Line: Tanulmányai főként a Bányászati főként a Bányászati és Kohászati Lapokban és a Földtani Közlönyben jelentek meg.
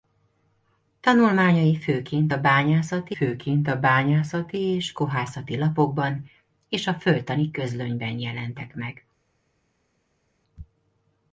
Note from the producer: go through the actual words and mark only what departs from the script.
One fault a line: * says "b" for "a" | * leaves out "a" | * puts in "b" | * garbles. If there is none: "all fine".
all fine